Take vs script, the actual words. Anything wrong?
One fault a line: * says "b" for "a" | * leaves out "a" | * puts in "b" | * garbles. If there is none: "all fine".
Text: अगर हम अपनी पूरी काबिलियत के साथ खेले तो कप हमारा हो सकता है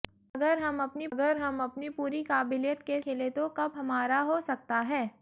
* puts in "अगर हम अपनी"
* leaves out "साथ"